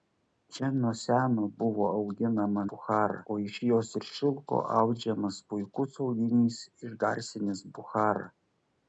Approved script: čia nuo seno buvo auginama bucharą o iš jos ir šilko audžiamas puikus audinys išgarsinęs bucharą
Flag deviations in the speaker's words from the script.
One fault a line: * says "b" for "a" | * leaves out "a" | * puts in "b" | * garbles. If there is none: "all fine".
all fine